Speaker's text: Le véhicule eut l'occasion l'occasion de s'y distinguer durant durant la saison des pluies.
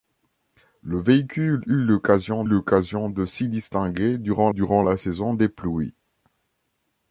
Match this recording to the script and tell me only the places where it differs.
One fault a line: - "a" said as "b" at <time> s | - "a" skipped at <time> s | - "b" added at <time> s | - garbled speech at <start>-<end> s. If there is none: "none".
none